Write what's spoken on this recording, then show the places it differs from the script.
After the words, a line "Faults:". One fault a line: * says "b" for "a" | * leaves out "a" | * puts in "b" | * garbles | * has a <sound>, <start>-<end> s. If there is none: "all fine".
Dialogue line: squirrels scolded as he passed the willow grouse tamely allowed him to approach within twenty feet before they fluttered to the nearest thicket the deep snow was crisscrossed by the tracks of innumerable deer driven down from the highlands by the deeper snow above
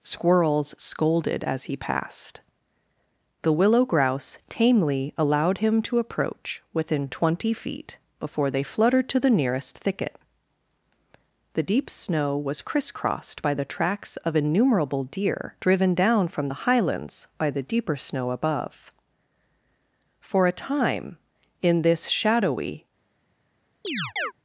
squirrels scolded as he passed the willow grouse tamely allowed him to approach within twenty feet before they fluttered to the nearest thicket the deep snow was crisscrossed by the tracks of innumerable deer driven down from the highlands by the deeper snow above for a time in this shadowy
Faults:
* puts in "for a time in this shadowy"
* has a chirp, 23.8-24.3 s